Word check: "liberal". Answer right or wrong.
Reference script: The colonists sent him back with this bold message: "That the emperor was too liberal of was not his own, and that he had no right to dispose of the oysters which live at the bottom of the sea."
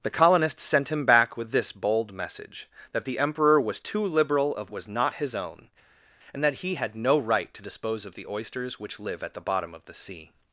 right